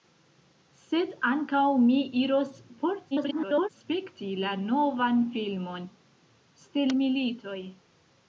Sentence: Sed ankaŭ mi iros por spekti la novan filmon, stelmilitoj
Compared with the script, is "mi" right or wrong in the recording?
right